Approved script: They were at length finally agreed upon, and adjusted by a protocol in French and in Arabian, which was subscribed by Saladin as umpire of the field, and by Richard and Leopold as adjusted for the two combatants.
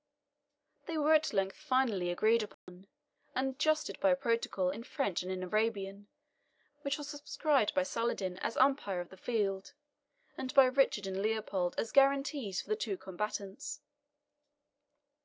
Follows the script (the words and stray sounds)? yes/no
no